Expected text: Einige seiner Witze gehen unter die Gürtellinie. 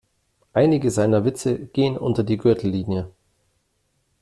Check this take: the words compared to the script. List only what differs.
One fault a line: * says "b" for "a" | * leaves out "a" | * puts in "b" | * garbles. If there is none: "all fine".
all fine